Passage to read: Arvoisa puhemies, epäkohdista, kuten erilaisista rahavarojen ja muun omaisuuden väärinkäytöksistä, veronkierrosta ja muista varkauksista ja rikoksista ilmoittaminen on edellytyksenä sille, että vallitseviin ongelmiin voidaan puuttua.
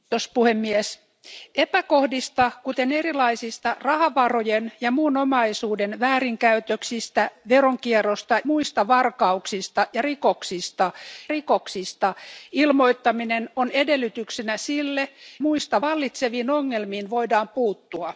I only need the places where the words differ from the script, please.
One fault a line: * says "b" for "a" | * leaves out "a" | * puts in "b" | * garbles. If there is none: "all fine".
* leaves out "ja"
* puts in "rikoksista"
* says "muista" for "että"